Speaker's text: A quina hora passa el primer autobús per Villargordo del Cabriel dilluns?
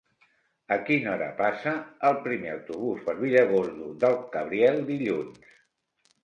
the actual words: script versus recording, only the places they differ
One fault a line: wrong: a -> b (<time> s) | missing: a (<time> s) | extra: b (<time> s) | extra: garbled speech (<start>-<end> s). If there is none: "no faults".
no faults